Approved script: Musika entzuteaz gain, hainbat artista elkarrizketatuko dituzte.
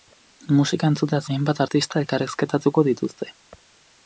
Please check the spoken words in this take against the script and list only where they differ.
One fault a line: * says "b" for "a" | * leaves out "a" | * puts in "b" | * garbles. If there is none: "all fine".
* leaves out "gain"